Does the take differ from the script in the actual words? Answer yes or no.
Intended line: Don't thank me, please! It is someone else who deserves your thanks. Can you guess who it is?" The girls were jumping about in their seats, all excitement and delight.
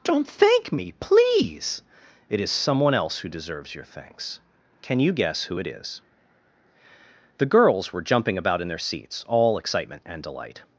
no